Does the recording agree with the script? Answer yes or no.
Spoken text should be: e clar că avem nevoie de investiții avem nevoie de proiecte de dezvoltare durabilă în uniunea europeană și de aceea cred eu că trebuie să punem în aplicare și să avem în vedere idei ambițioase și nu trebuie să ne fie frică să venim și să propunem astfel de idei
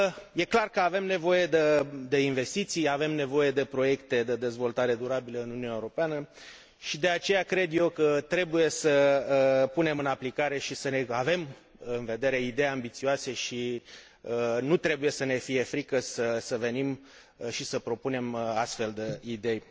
yes